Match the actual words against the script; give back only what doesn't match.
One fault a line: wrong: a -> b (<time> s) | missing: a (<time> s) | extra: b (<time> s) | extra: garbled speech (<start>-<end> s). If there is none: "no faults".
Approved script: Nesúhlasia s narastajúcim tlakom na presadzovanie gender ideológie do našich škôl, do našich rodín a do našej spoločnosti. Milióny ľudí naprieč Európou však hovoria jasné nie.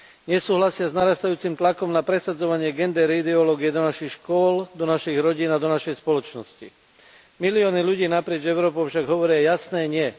no faults